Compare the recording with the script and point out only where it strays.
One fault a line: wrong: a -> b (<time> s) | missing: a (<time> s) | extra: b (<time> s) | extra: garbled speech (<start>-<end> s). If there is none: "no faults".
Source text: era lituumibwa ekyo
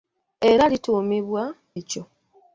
no faults